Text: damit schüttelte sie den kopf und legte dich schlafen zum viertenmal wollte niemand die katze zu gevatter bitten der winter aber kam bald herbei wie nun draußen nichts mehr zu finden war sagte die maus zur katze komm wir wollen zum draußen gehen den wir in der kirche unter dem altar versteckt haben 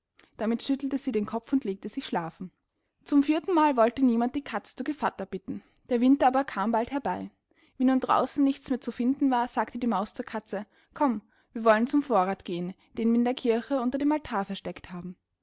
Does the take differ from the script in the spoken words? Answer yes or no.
yes